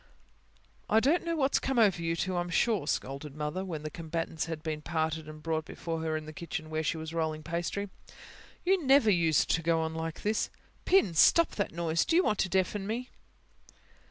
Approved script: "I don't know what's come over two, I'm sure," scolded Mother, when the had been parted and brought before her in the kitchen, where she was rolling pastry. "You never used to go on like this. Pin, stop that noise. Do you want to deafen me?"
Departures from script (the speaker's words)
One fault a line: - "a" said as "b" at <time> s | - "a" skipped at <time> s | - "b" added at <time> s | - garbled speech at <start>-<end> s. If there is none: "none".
- "you" added at 2.0 s
- "combatants" added at 3.9 s